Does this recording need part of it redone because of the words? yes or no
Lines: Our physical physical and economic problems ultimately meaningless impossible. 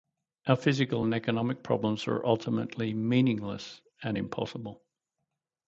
yes